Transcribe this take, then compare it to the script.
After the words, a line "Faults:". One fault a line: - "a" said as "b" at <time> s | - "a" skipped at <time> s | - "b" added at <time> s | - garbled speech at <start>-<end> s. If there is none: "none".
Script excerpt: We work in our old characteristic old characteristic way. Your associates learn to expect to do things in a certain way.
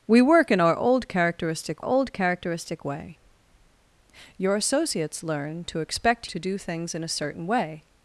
We work in our old characteristic old characteristic way. Your associates learn to expect to do things in a certain way.
Faults:
none